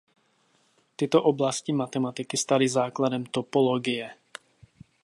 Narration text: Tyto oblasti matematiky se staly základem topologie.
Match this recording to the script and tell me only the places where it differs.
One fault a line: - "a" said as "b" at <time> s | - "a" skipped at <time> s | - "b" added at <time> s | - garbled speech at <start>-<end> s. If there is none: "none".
- "se" skipped at 2.4 s